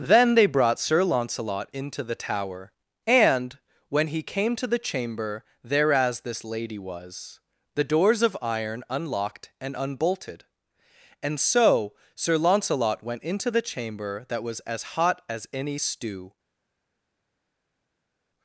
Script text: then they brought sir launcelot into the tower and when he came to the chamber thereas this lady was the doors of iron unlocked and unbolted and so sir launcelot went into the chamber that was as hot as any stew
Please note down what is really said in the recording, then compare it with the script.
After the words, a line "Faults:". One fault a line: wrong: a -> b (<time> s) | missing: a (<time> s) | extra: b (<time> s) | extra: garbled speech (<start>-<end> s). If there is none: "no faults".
then they brought sir launcelot into the tower and when he came to the chamber thereas this lady was the doors of iron unlocked and unbolted and so sir launcelot went into the chamber that was as hot as any stew
Faults:
no faults